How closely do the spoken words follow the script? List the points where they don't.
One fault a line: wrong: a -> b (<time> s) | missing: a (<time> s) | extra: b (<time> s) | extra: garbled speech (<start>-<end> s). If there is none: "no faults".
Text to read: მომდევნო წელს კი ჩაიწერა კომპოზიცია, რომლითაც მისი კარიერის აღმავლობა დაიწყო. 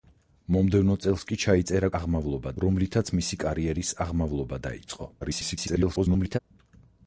wrong: კომპოზიცია -> აღმავლობა (2.0 s)
extra: garbled speech (5.2-6.4 s)